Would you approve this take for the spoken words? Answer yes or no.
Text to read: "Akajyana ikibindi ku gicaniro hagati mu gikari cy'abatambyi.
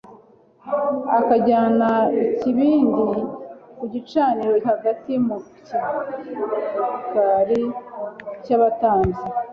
yes